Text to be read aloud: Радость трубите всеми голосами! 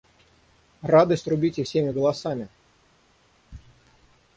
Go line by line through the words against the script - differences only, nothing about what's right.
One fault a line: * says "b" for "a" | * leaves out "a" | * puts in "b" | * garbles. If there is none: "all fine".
all fine